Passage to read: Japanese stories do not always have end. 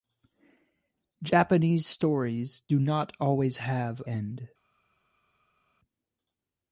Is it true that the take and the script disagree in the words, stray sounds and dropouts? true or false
false